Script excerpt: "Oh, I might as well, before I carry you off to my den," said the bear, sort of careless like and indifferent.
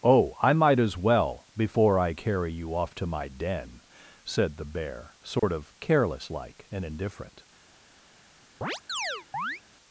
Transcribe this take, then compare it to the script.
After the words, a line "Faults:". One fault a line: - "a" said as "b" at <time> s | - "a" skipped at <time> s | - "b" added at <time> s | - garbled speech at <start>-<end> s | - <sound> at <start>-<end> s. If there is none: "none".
"Oh, I might as well, before I carry you off to my den," said the bear, sort of careless like and indifferent.
Faults:
- dropout at 5.4-5.4 s
- chirp at 8.6-9.6 s